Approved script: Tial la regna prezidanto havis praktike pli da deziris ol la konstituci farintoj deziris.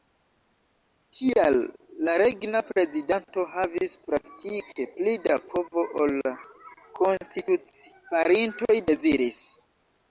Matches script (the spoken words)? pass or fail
fail